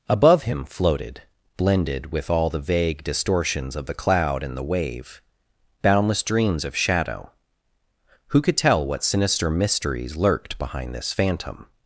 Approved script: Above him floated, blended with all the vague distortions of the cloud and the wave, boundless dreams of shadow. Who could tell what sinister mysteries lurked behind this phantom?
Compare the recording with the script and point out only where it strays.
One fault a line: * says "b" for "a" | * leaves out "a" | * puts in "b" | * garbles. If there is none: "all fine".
all fine